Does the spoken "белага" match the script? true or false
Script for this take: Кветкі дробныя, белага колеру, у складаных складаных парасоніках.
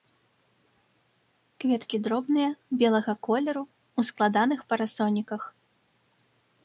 true